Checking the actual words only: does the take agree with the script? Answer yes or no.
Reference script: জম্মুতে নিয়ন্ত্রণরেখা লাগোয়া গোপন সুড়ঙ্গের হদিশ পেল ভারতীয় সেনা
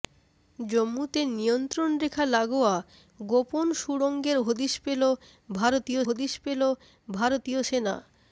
no